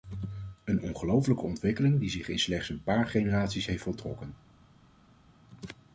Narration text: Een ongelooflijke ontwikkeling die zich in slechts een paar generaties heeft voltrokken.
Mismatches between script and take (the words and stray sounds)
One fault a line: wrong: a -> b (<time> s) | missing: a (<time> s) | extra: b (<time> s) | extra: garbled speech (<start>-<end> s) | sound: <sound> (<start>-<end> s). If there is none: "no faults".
no faults